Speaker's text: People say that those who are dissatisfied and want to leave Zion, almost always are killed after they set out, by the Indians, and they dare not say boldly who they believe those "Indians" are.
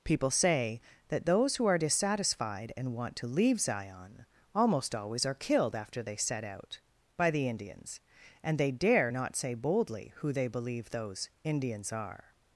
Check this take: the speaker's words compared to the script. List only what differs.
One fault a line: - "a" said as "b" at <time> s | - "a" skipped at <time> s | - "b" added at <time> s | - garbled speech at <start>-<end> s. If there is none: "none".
none